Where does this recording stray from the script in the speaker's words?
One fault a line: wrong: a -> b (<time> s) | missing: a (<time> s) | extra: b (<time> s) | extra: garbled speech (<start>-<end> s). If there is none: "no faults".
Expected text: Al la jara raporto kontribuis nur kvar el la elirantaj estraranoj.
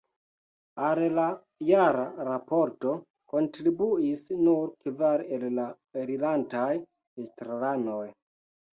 no faults